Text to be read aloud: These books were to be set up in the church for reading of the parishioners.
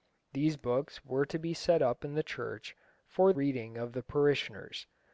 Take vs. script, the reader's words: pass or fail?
pass